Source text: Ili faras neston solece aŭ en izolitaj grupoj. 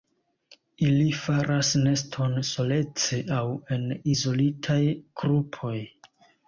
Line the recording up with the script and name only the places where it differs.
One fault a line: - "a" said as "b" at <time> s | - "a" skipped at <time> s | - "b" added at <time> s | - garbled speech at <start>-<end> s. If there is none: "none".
none